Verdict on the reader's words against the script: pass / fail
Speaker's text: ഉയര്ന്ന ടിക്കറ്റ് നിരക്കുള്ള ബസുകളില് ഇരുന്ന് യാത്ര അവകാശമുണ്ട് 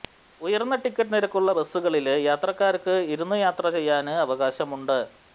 fail